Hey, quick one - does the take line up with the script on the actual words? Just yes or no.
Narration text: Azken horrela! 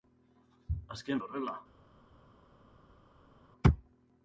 yes